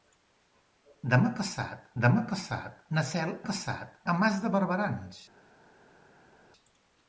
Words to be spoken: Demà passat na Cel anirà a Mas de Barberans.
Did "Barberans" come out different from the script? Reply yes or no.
no